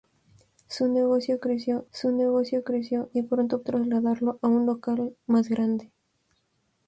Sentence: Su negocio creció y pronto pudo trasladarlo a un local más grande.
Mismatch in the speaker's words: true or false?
true